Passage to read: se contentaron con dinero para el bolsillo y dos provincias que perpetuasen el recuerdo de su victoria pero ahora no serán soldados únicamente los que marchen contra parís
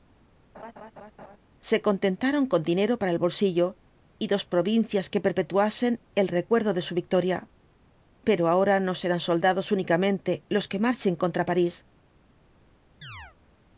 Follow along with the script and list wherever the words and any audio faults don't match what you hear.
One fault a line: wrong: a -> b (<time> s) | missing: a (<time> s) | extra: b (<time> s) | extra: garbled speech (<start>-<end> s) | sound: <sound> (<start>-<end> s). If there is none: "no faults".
sound: laugh (0.5-1.4 s)
sound: chirp (13.0-13.4 s)